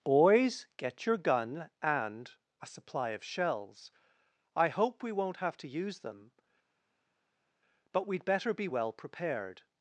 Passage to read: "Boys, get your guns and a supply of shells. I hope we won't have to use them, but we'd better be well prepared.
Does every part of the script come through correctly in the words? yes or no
no